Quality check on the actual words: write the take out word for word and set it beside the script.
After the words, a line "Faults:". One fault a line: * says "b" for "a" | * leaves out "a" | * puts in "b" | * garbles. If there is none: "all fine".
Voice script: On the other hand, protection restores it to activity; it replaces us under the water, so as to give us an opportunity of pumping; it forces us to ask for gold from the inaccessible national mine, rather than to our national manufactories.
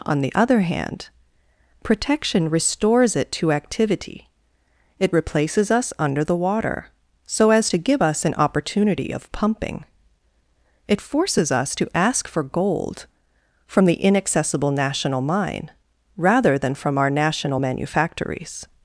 On the other hand, protection restores it to activity; it replaces us under the water, so as to give us an opportunity of pumping; it forces us to ask for gold from the inaccessible national mine, rather than from our national manufactories.
Faults:
* says "from" for "to"